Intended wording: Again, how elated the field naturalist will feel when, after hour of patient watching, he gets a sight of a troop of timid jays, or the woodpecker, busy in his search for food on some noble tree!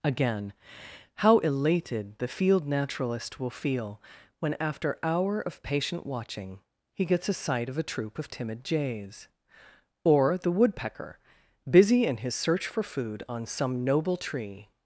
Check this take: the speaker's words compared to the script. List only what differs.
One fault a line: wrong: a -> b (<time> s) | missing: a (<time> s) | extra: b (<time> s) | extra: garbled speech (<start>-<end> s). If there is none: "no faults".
no faults